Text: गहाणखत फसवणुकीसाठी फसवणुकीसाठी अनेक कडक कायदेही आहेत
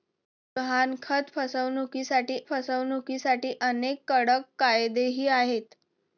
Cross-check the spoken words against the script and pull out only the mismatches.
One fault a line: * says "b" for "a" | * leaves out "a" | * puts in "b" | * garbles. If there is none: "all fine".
all fine